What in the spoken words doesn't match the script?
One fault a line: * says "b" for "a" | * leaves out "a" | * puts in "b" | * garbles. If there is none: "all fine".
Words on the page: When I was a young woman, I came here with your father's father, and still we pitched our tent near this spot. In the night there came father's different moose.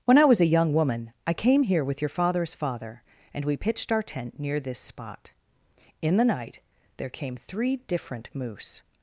* leaves out "still"
* says "three" for "father's"